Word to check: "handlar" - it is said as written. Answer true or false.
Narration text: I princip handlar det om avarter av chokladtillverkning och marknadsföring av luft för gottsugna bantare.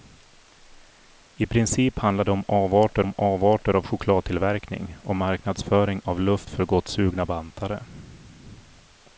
true